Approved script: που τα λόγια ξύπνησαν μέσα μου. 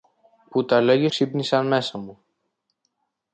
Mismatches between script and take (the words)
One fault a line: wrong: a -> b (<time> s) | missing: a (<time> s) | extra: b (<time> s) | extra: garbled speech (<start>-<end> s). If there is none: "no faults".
no faults